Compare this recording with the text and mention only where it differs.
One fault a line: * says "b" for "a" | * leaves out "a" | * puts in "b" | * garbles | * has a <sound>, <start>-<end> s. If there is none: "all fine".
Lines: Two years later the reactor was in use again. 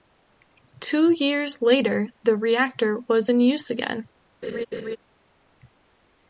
* has a laugh, 4.4-5.0 s